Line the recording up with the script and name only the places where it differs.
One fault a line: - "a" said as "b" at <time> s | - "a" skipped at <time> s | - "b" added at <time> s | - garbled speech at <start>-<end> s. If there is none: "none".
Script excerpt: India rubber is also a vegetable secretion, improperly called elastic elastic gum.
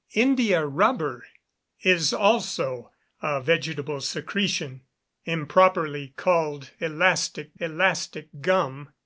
none